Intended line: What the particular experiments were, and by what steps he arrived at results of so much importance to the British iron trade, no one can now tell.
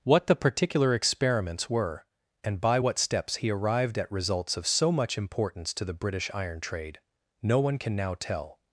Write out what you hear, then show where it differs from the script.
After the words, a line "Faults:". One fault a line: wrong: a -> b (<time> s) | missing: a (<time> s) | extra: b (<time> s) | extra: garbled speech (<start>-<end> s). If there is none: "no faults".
What the particular experiments were, and by what steps he arrived at results of so much importance to the British iron trade, no one can now tell.
Faults:
no faults